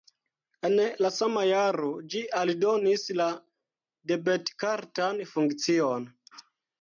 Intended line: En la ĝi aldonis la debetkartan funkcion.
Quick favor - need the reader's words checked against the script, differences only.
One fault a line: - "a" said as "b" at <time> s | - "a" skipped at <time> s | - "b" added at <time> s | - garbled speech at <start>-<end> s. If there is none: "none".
- "sama jaro" added at 1.2 s